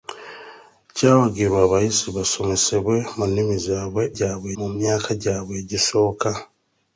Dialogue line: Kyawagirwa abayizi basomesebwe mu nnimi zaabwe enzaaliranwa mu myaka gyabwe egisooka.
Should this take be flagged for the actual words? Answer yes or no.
yes